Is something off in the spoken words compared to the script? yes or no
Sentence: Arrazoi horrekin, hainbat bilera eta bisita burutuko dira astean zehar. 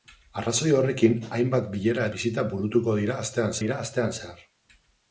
yes